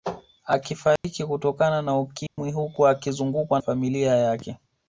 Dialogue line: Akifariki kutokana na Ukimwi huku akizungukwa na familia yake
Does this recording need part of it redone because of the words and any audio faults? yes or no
yes